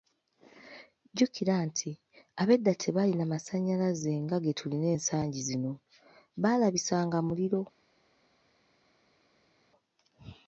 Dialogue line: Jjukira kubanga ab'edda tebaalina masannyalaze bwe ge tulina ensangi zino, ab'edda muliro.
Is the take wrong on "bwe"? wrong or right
wrong